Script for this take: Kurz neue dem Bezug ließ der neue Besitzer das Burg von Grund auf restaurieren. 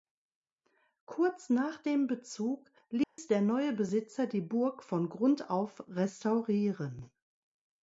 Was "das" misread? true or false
true